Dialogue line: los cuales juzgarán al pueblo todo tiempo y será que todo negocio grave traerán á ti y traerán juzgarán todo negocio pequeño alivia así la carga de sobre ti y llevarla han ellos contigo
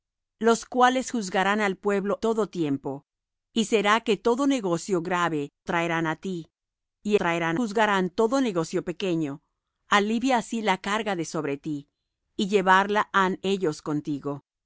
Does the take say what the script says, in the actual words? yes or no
yes